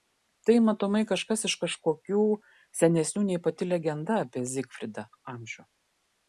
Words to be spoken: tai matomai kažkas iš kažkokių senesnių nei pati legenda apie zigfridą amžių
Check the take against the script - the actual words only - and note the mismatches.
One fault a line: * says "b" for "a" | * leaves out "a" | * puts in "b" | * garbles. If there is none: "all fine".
all fine